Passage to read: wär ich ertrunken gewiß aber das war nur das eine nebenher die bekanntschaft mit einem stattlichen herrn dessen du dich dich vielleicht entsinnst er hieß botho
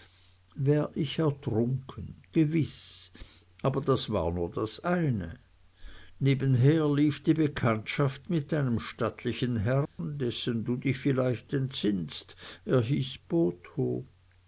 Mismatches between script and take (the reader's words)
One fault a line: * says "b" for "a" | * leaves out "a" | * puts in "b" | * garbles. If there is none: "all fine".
* puts in "lief"
* leaves out "dich"